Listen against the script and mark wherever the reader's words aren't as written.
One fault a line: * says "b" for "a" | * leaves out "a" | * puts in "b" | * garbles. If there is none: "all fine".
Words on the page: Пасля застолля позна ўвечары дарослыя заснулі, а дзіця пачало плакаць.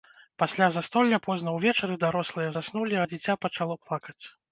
all fine